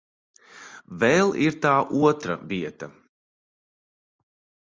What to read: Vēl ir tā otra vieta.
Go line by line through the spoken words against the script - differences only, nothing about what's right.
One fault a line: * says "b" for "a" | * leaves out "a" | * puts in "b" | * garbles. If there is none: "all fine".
all fine